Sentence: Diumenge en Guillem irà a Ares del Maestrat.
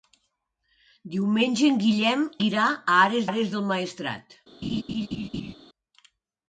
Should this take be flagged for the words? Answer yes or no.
yes